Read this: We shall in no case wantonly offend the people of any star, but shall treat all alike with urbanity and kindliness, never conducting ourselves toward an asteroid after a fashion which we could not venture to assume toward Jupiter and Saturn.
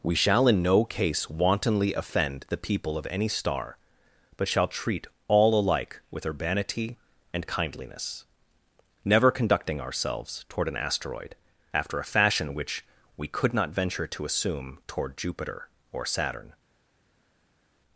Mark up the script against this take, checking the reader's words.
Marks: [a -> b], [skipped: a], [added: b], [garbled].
We shall in no case wantonly offend the people of any star, but shall treat all alike with urbanity and kindliness, never conducting ourselves toward an asteroid after a fashion which we could not venture to assume toward Jupiter [and -> or] Saturn.